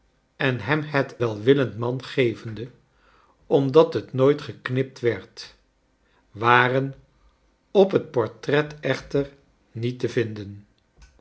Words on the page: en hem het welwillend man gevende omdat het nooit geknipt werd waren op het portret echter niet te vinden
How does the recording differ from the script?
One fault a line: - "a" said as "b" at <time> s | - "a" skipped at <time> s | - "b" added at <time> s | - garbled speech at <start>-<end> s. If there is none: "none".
none